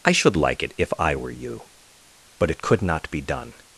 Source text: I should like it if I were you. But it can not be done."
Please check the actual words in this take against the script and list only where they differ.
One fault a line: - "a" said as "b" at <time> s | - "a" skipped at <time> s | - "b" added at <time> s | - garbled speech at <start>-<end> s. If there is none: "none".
- "can" said as "could" at 2.6 s